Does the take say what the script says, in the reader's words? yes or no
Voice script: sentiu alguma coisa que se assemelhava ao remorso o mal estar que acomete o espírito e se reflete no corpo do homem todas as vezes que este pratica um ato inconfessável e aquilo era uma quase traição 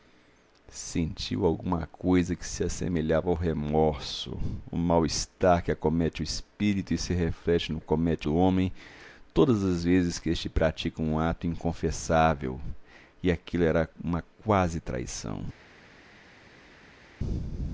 no